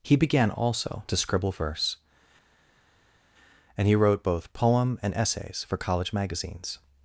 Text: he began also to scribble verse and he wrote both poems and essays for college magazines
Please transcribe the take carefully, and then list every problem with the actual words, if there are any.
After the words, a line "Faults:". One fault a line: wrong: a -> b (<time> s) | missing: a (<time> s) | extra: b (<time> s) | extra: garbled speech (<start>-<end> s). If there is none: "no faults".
he began also to scribble verse and he wrote both poem and essays for college magazines
Faults:
wrong: poems -> poem (4.5 s)